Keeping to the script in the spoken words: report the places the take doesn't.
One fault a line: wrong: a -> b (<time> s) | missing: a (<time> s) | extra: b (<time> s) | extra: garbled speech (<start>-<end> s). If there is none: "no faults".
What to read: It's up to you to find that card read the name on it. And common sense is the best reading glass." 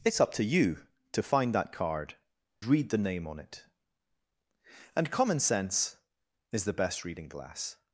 no faults